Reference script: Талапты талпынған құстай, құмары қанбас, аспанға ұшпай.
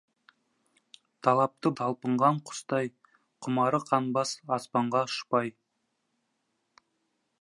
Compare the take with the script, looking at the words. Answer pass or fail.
pass